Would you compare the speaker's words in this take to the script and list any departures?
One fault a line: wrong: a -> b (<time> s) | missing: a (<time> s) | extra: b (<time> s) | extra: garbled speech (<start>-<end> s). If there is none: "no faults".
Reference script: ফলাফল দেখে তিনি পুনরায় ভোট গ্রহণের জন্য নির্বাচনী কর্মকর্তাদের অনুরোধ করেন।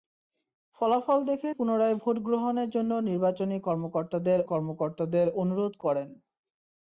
missing: তিনি (1.5 s)
extra: কর্মকর্তাদের (4.4 s)